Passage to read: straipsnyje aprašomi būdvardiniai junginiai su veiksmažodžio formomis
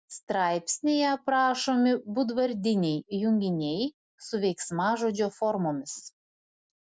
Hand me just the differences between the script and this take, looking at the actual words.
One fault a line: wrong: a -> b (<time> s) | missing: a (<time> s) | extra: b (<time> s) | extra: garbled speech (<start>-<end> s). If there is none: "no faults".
no faults